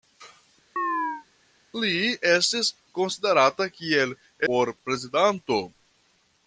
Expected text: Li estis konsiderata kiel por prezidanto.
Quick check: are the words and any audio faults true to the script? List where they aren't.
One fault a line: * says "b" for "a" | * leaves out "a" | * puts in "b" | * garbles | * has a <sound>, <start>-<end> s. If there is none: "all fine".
* has a chirp, 0.8-1.3 s